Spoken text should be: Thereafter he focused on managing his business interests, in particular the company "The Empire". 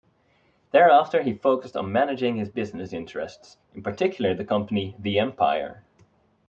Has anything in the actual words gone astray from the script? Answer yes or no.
no